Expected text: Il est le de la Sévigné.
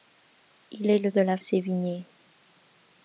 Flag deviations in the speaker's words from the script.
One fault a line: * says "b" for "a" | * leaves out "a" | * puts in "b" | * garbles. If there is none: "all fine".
all fine